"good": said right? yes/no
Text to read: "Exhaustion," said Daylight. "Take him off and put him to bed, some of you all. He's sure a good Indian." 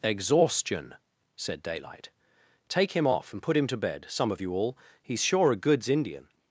no